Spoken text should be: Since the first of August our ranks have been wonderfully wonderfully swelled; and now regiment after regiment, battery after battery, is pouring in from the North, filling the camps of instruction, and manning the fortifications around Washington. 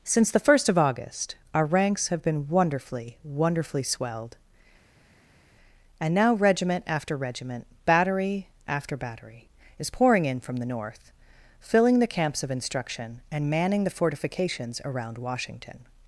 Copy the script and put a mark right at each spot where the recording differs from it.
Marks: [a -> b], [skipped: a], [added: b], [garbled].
Since the first of August our ranks have been wonderfully wonderfully swelled; and now regiment after regiment, battery after battery, is pouring in from the North, filling the camps of instruction, and manning the fortifications around Washington.